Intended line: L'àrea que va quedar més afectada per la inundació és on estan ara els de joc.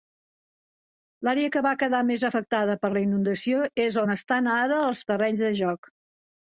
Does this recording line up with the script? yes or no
no